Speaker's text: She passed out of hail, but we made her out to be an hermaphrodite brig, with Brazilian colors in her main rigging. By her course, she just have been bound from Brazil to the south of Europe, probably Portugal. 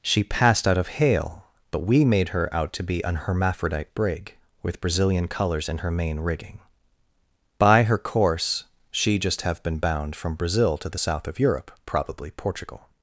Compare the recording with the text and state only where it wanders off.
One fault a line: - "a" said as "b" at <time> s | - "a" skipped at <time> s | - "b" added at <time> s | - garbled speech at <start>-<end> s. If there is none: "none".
none